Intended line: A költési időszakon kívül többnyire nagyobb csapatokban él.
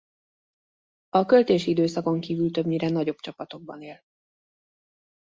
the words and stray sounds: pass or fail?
pass